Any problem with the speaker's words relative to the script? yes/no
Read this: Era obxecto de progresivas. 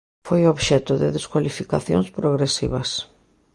yes